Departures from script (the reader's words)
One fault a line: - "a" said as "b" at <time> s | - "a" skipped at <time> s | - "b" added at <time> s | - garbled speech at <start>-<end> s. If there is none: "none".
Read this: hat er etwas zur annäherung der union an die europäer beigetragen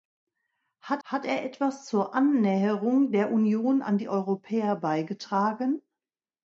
- "hat" added at 1.0 s